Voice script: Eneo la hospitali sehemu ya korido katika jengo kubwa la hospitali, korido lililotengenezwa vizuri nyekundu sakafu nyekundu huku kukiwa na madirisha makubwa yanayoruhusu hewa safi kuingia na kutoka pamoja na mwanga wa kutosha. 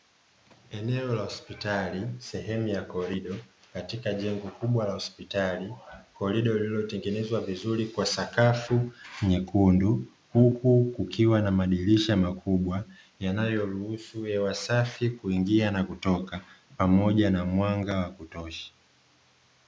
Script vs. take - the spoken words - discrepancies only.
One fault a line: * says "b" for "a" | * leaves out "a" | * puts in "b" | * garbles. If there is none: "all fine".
* says "kwa" for "nyekundu"